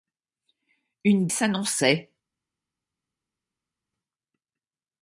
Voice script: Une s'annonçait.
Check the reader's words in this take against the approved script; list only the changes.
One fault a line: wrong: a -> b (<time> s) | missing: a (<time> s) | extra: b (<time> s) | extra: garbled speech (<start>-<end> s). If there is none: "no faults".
no faults